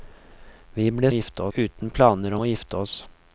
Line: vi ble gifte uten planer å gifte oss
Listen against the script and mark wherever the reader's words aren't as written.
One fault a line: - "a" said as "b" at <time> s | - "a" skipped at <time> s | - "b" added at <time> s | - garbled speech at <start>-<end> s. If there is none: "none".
none